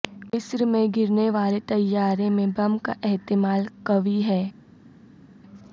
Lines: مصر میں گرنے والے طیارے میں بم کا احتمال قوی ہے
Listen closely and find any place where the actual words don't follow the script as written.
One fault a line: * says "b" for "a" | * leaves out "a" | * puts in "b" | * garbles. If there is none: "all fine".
all fine